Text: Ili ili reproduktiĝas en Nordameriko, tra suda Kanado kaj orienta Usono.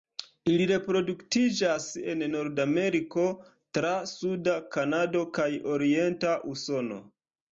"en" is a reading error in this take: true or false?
false